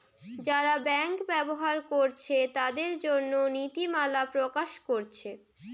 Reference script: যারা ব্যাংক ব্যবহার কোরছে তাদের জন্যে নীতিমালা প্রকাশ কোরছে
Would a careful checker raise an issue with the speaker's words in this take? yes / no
no